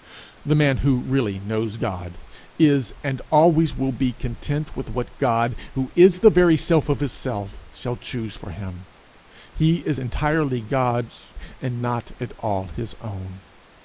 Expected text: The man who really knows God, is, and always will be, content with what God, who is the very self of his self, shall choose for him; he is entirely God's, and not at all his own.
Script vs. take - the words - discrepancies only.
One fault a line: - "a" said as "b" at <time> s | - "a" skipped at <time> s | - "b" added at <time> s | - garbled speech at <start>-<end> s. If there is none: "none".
none